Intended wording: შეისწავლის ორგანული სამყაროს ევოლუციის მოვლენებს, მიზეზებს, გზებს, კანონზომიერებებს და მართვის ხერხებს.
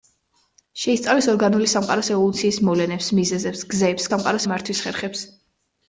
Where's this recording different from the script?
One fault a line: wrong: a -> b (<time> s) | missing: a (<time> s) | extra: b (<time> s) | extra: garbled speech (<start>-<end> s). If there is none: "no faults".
wrong: კანონზომიერებებს -> სამყაროს (4.1 s)